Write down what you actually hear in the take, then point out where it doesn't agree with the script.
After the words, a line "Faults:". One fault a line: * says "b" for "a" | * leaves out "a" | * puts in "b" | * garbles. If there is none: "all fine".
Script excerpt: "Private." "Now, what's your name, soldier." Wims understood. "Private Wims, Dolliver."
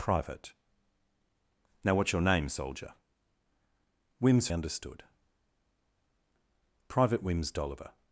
"Private." "Now, what's your name, soldier." Wims understood. "Private Wims, Dolliver."
Faults:
all fine